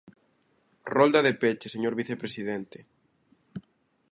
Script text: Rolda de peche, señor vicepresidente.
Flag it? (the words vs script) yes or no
no